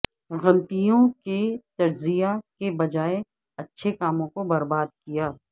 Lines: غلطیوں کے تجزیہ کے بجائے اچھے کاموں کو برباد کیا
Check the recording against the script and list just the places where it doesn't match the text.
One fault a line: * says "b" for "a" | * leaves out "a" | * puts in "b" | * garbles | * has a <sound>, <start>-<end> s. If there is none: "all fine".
all fine